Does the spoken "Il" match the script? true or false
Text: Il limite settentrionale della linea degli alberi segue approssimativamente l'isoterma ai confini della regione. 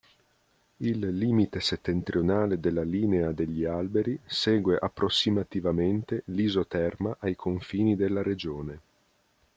true